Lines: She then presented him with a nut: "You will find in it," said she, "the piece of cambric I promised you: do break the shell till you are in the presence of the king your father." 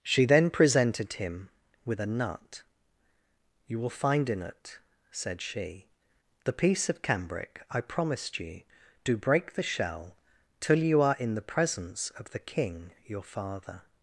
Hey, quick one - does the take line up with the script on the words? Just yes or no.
yes